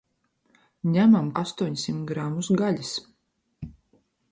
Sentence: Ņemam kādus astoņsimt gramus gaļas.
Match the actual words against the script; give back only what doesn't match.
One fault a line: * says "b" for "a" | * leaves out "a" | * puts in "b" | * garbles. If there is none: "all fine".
* leaves out "kādus"